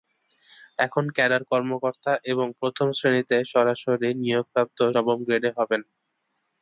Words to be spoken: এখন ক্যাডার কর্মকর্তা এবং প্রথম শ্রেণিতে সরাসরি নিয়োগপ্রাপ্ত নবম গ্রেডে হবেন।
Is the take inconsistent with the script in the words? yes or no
no